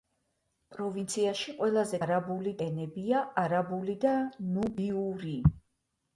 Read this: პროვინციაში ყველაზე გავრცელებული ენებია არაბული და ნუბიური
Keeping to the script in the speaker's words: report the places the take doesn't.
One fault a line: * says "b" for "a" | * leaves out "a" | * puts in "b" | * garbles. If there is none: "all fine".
* says "არაბული" for "გავრცელებული"